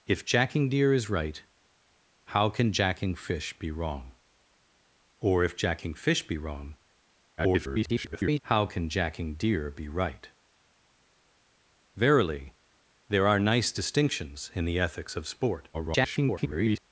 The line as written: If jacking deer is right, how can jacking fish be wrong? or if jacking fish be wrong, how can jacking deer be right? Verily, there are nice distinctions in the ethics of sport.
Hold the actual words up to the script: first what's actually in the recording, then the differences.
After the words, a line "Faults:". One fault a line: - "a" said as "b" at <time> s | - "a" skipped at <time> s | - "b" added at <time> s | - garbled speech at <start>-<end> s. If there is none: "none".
If jacking deer is right, how can jacking fish be wrong? or if jacking fish be wrong, [garbled] how can jacking deer be right? Verily, there are nice distinctions in the ethics of sport. [garbled]
Faults:
- garbled speech at 7.4-8.4 s
- garbled speech at 15.7-16.8 s